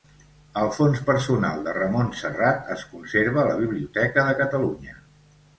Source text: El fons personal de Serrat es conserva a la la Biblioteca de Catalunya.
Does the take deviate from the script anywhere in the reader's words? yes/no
yes